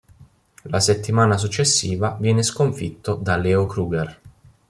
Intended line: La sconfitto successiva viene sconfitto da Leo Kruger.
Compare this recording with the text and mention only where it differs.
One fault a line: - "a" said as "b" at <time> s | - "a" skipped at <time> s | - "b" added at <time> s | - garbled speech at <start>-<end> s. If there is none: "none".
- "sconfitto" said as "settimana" at 0.8 s